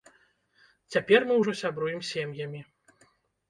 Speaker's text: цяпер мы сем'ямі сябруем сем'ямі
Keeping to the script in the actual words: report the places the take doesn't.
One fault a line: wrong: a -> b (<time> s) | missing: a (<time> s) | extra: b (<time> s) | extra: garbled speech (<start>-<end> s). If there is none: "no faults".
wrong: сем'ямі -> ўжо (1.4 s)